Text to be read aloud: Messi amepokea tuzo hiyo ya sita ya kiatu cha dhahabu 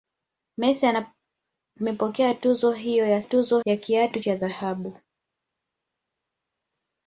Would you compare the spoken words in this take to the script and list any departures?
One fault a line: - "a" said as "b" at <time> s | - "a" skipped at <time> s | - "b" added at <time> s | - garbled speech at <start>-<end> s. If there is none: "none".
- "sita" said as "tuzo" at 3.2 s